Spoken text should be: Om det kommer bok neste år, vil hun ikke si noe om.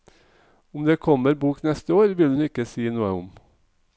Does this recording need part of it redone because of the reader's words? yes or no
no